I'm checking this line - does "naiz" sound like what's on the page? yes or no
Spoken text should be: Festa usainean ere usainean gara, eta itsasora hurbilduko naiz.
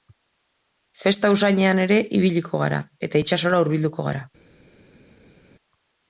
no